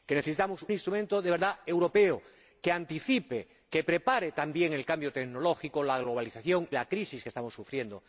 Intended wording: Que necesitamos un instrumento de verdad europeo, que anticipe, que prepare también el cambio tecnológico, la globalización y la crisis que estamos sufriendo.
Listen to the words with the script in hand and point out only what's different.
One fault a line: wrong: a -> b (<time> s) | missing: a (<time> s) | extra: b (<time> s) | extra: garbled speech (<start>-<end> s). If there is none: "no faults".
missing: un (0.7 s)
missing: y (6.7 s)